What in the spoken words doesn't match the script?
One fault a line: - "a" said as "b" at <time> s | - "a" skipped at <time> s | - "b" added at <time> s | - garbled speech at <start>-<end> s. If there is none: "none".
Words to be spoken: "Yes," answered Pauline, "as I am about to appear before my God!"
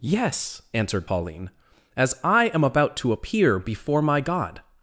none